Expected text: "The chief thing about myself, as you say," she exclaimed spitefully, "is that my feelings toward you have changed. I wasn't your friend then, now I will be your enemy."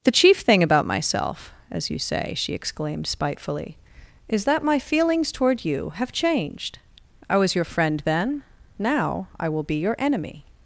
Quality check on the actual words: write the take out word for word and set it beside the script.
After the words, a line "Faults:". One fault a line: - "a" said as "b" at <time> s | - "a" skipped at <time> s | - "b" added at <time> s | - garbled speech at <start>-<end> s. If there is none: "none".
"The chief thing about myself, as you say," she exclaimed spitefully, "is that my feelings toward you have changed. I was your friend then, now I will be your enemy."
Faults:
- "wasn't" said as "was" at 7.4 s